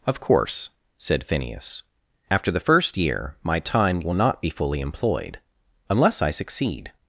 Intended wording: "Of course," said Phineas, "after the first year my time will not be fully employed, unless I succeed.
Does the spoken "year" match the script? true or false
true